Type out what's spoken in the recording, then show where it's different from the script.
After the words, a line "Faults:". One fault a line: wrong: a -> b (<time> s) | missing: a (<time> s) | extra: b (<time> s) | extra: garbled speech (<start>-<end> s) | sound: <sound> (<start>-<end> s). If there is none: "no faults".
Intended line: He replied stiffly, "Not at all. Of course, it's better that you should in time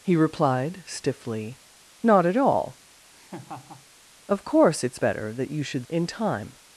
He replied stiffly, "Not at all. Of course, it's better that you should in time
Faults:
sound: laugh (3.1-3.9 s)